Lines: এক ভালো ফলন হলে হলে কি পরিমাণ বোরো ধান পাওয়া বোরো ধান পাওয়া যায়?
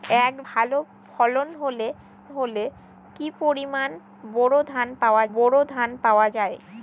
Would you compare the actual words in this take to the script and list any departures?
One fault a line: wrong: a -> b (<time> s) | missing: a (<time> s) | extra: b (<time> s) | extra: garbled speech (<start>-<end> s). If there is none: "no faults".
no faults